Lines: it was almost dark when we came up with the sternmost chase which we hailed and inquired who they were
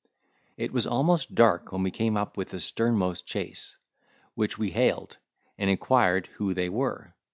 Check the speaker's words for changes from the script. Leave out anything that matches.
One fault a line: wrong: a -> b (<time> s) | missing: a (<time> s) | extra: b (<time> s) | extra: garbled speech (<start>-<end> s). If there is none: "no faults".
no faults